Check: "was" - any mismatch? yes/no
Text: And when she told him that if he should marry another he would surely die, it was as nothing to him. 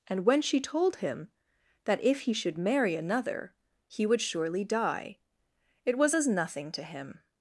no